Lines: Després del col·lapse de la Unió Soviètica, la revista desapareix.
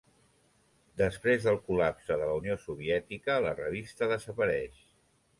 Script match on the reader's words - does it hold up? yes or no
yes